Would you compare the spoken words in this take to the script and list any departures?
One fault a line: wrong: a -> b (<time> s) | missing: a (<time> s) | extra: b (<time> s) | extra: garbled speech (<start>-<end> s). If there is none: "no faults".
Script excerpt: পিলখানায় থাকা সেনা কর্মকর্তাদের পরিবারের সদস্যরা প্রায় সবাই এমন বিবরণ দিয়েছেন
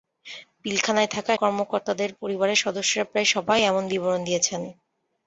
missing: সেনা (1.3 s)